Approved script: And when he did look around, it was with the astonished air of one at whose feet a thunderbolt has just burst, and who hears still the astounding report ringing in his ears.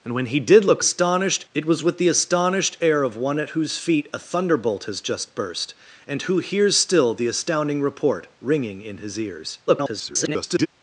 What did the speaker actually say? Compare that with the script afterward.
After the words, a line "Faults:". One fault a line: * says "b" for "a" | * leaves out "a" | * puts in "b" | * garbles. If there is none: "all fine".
And when he did look astonished, it was with the astonished air of one at whose feet a thunderbolt has just burst, and who hears still the astounding report ringing in his ears. [garbled]
Faults:
* says "astonished" for "around"
* garbles